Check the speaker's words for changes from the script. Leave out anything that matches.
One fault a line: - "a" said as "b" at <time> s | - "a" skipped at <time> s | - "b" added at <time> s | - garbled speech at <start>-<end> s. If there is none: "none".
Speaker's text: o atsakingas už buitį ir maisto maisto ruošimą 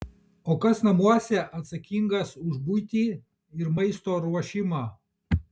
- "kas namuose" added at 0.6 s
- "maisto" skipped at 4.2 s